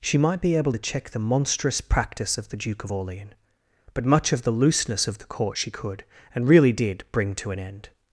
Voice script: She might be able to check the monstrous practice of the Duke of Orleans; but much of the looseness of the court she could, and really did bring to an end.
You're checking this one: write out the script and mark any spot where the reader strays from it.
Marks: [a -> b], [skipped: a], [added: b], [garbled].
She might be able to check the monstrous practice of the Duke of Orleans; but much of the looseness of the court she could, and really did bring to an end.